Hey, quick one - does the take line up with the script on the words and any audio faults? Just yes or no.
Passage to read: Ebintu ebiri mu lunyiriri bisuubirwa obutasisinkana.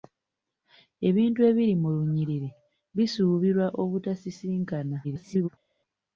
no